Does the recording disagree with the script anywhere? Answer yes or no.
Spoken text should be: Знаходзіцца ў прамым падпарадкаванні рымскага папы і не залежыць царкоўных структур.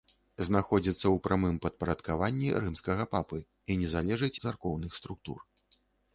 no